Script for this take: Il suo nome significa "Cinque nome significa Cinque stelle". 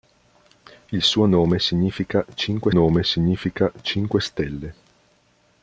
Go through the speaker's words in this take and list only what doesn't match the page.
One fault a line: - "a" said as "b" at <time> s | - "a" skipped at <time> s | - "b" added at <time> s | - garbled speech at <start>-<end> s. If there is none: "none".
none